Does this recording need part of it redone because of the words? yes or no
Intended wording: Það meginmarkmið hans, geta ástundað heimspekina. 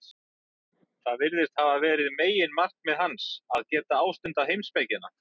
yes